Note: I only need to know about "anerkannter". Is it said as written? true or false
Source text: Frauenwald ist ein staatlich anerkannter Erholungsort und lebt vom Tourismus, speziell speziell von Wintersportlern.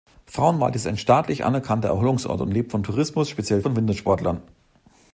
true